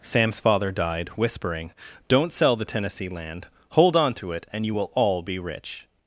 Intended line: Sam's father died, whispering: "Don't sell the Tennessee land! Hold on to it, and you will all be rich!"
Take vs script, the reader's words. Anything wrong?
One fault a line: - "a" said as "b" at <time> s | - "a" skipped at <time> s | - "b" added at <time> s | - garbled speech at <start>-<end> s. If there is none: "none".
none